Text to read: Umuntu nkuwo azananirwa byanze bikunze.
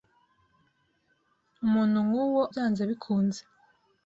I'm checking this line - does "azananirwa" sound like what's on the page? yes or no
no